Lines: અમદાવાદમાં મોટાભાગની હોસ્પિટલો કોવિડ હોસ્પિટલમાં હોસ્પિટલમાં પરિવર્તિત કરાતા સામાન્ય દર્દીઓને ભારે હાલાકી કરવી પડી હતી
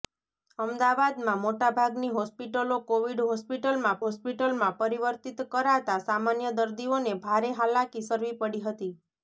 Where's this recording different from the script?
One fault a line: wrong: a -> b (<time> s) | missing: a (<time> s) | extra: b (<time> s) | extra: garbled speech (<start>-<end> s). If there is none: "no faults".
no faults